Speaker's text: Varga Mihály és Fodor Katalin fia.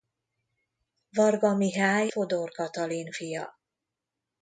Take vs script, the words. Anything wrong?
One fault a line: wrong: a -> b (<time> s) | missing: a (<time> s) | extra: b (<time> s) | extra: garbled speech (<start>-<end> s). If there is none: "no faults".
missing: és (2.1 s)